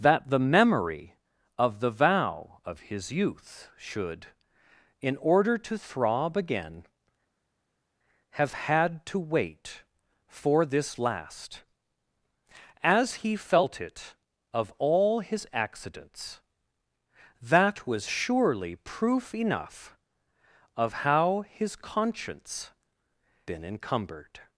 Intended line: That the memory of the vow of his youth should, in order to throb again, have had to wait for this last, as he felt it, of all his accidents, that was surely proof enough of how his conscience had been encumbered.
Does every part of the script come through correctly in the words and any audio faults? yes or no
no